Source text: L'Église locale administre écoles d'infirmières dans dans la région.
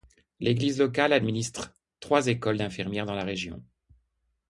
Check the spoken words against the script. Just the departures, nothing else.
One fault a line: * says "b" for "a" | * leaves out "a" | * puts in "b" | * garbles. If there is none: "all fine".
* puts in "trois"
* leaves out "dans"